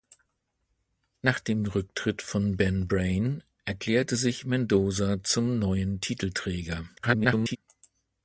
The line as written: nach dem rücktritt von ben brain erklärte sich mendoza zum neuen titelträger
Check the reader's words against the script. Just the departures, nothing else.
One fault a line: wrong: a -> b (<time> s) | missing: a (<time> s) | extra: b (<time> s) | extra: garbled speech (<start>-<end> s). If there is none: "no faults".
extra: garbled speech (7.0-7.6 s)